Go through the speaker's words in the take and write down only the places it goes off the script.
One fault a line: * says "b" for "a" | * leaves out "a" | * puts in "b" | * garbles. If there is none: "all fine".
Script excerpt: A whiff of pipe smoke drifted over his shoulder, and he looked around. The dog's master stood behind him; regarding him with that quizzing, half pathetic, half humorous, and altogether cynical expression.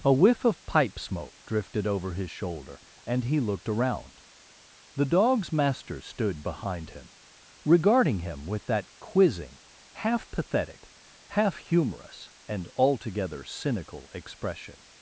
all fine